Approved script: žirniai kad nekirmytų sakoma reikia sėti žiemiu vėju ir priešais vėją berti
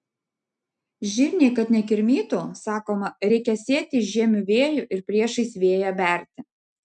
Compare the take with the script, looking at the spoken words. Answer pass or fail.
pass